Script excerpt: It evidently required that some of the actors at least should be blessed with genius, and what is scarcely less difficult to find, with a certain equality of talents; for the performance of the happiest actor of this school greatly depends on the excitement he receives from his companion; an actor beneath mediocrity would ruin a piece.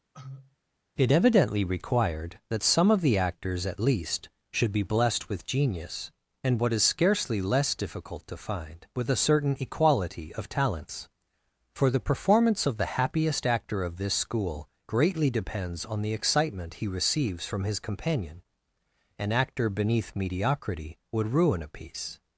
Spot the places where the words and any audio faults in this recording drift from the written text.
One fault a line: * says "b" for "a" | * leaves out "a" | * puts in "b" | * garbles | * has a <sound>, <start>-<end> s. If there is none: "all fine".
* has a cough, 0.1-0.6 s